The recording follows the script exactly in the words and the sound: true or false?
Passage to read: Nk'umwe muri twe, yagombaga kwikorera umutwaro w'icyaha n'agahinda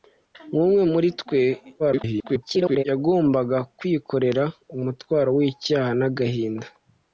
false